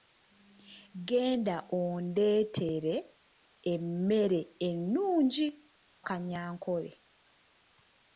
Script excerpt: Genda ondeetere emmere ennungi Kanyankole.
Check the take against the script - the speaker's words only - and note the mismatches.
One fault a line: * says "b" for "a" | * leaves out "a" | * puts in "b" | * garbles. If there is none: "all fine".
all fine